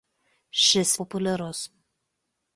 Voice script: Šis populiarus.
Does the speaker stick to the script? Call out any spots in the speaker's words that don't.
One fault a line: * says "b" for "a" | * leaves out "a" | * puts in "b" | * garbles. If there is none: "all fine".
all fine